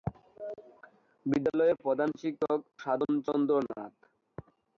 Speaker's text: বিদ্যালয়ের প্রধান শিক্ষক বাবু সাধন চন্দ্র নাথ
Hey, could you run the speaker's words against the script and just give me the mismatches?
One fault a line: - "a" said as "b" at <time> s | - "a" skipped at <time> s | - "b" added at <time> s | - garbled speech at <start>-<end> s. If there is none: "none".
- "বাবু" skipped at 2.6 s